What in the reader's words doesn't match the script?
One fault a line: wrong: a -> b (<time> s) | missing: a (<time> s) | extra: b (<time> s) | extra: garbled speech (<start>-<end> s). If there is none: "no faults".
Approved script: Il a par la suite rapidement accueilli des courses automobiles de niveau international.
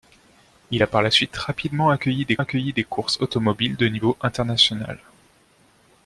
extra: accueilli des (2.4 s)